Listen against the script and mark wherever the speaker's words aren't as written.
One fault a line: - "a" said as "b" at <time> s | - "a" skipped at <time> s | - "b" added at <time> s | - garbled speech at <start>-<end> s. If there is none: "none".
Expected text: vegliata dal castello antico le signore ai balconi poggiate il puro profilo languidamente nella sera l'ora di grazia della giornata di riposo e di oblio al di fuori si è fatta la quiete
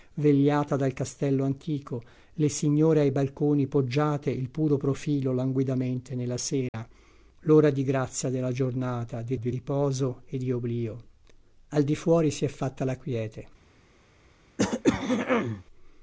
- "di" added at 9.4 s